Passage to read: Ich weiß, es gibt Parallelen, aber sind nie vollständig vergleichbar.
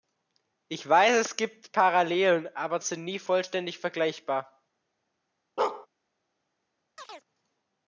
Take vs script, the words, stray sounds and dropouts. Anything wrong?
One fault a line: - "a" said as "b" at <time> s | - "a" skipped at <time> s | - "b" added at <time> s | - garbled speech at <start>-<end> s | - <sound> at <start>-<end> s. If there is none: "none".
- bark at 5.6-5.9 s
- chirp at 7.0-7.3 s